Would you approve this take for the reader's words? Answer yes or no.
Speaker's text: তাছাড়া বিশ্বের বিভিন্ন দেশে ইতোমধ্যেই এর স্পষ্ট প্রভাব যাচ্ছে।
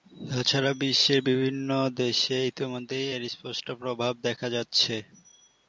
no